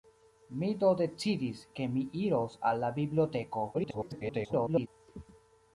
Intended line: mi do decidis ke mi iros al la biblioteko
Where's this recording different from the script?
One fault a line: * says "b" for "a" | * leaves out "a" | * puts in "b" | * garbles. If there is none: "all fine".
* garbles